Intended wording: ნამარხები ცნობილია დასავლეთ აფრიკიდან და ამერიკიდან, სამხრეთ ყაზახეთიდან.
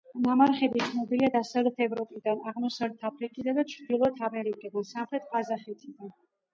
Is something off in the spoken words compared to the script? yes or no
yes